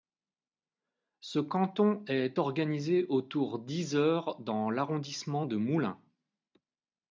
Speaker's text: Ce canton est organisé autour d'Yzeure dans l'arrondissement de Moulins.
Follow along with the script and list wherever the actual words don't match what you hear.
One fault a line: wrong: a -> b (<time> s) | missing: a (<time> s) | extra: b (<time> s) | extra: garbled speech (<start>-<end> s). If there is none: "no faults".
no faults